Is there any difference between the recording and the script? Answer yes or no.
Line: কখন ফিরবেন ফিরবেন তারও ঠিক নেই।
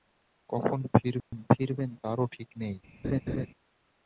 no